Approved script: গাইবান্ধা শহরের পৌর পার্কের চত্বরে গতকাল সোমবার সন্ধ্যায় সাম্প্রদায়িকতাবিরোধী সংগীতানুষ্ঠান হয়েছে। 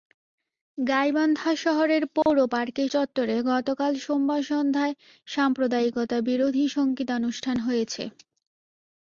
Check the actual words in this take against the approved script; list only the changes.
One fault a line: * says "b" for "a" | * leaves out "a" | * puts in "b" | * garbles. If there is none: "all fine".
all fine